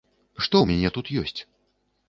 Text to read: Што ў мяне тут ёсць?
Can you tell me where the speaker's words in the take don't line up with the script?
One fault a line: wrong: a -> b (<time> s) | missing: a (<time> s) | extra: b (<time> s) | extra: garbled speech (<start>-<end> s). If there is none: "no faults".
no faults